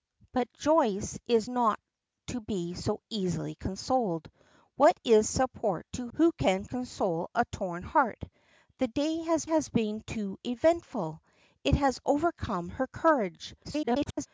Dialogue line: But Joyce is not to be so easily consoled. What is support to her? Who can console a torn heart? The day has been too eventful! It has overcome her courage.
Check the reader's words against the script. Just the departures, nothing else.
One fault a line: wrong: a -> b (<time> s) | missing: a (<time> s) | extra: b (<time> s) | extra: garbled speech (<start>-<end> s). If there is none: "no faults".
missing: her (6.1 s)
extra: has (9.5 s)
extra: garbled speech (13.6-14.3 s)